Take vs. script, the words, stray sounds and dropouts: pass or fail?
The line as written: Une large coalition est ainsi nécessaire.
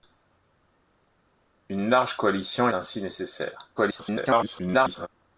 fail